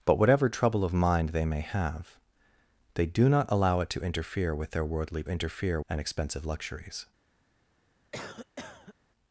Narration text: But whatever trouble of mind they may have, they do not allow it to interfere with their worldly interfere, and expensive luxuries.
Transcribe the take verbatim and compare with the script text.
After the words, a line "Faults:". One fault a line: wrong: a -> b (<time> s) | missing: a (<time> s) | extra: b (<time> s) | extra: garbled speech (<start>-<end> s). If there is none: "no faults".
But whatever trouble of mind they may have, they do not allow it to interfere with their worldly interfere, and expensive luxuries.
Faults:
no faults